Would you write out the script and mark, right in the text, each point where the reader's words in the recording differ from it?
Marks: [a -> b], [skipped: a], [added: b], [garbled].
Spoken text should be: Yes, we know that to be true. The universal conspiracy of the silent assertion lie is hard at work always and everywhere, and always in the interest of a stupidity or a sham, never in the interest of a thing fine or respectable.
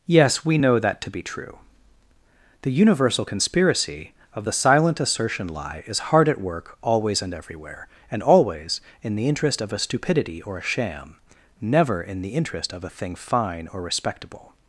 Yes, we know that to be true. The universal conspiracy of the silent assertion lie is hard at work always and everywhere, and always in the interest of a stupidity or a sham, never in the interest of a thing fine or respectable.